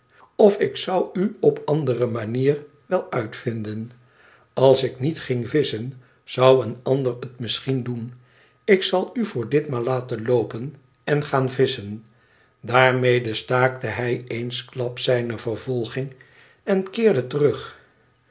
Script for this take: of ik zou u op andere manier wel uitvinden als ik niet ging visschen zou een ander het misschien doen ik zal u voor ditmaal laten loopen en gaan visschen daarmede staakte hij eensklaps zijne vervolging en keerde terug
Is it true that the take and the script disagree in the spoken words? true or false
false